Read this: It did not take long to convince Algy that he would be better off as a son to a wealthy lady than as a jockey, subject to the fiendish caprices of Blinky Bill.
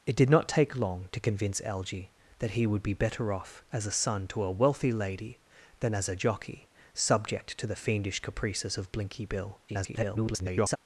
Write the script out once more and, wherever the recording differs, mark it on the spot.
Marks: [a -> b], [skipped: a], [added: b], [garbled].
It did not take long to convince Algy that he would be better off as a son to a wealthy lady than as a jockey, subject to the fiendish caprices of Blinky Bill. [garbled]